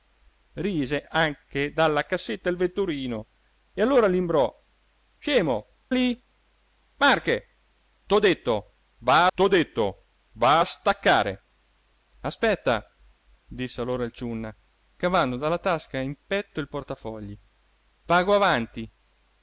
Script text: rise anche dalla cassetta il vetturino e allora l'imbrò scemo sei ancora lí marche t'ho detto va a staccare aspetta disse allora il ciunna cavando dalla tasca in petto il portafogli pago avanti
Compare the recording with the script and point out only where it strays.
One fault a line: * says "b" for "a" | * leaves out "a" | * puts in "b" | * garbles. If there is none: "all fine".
* says "lí marche t'ho detto va" for "sei ancora lí marche"